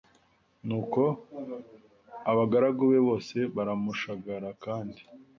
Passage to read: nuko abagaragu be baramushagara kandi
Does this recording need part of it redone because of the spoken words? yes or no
yes